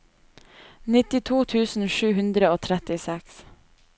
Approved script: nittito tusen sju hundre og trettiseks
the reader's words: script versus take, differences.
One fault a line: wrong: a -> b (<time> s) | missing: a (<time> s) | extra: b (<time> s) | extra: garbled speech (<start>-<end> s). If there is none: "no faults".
no faults